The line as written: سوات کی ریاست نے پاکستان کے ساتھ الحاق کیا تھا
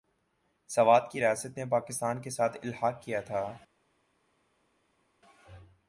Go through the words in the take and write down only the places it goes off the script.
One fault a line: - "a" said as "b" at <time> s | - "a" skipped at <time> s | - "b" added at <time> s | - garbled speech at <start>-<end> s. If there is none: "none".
none